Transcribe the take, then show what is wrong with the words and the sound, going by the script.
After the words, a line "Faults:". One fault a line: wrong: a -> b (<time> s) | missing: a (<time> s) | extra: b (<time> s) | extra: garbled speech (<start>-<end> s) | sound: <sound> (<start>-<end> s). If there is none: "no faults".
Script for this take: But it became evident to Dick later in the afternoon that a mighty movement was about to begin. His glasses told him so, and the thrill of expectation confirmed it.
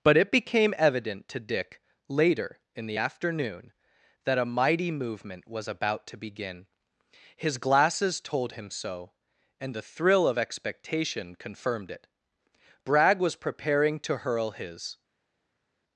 But it became evident to Dick later in the afternoon that a mighty movement was about to begin. His glasses told him so, and the thrill of expectation confirmed it. Bragg was preparing to hurl his
Faults:
extra: Bragg was preparing to hurl his (12.8 s)